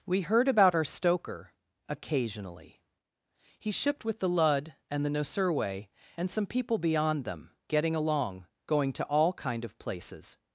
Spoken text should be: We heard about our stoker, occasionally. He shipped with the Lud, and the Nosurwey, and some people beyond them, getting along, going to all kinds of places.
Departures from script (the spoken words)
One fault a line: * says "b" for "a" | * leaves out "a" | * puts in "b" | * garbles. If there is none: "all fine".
* says "kind" for "kinds"